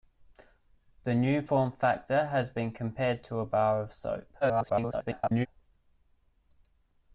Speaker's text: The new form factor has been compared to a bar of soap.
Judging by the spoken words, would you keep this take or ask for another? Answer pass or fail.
fail